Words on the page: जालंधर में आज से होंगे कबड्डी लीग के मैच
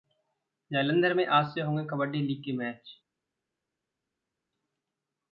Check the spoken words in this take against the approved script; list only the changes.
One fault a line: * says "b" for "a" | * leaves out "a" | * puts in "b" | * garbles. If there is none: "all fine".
all fine